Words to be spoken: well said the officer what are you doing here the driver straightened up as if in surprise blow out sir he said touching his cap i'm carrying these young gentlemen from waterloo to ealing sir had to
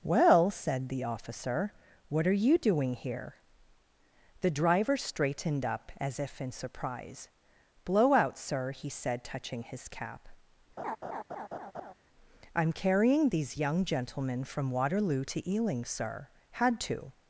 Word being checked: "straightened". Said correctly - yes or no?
yes